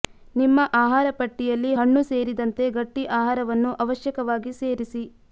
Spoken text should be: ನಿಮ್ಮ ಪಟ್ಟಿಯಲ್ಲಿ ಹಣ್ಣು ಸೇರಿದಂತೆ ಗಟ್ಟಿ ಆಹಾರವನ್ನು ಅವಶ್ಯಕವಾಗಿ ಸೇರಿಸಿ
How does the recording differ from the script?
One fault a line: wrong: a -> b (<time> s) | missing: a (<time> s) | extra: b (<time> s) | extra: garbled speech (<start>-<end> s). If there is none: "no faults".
extra: ಆಹಾರ (0.8 s)